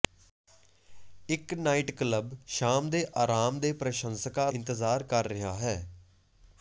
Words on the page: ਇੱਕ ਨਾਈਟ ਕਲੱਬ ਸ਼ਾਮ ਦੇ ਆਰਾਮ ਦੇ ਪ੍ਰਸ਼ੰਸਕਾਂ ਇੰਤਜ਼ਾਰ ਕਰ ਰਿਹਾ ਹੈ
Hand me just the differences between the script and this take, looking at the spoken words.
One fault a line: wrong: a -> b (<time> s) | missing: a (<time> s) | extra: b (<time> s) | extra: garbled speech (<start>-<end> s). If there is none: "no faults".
no faults